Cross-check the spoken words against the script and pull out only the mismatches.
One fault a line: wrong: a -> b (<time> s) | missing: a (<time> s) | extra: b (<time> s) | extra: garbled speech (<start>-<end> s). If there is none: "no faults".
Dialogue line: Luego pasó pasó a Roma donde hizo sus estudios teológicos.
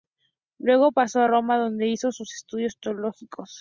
missing: pasó (1.2 s)